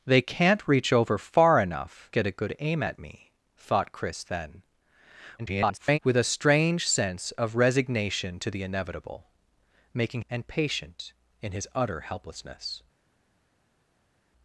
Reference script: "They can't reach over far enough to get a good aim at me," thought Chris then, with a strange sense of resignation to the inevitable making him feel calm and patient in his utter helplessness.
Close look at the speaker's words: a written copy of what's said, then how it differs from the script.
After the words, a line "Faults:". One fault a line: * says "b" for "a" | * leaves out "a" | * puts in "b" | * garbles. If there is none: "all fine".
"They can't reach over far enough get a good aim at me," thought Chris then, [garbled] with a strange sense of resignation to the inevitable making and patient in his utter helplessness.
Faults:
* leaves out "to"
* garbles
* leaves out "him feel calm"